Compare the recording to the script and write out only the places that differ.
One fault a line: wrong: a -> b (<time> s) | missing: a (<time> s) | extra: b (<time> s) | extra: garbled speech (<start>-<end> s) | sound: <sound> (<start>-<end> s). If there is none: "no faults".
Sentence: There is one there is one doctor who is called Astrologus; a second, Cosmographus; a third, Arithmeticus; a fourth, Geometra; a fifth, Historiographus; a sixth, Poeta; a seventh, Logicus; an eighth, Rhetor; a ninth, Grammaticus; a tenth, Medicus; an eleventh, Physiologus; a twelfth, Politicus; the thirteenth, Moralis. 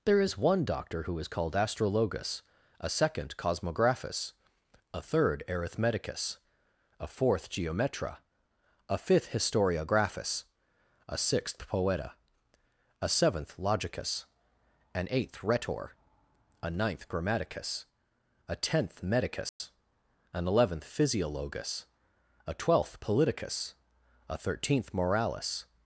missing: there is one (0.7 s)
sound: dropout (19.5-19.6 s)
wrong: the -> a (24.3 s)